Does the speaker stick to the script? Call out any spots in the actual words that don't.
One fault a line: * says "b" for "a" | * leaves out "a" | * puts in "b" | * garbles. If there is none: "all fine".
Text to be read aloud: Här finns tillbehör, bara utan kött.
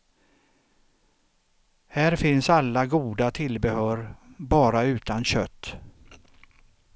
* puts in "alla goda"